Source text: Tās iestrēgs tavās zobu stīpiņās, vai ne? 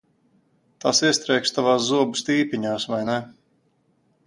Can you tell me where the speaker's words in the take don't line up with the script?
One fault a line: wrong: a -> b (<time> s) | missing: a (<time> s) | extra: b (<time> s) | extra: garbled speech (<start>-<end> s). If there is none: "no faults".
no faults